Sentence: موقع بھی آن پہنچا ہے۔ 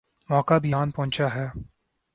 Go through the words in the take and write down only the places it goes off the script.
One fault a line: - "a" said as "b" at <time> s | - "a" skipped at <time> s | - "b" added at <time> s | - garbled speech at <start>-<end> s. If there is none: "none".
none